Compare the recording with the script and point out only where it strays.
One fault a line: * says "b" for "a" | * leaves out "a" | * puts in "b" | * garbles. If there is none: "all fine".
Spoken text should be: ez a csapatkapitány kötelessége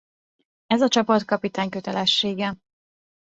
all fine